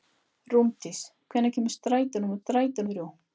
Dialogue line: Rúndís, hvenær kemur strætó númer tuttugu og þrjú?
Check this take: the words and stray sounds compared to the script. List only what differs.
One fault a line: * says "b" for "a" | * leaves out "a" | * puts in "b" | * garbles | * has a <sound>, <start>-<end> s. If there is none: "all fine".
* says "strætó" for "tuttugu"